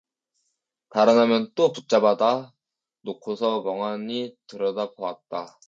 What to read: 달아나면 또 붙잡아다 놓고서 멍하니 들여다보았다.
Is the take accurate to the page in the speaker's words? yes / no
yes